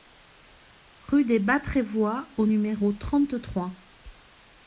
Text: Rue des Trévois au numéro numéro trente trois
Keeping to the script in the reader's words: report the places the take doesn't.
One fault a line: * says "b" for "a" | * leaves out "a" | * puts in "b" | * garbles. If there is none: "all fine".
* puts in "Bas"
* leaves out "numéro"